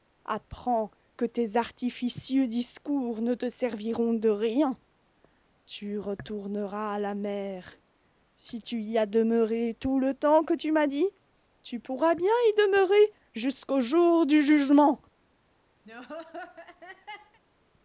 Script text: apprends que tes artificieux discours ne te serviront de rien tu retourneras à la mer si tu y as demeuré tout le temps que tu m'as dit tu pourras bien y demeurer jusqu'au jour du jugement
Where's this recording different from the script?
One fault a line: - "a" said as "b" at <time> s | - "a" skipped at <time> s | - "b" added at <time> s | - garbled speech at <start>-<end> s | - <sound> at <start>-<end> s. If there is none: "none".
- laugh at 15.8-17.4 s